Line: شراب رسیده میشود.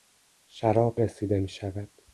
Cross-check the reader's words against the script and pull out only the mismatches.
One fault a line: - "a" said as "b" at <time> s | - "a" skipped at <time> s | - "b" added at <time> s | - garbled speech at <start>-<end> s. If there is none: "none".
none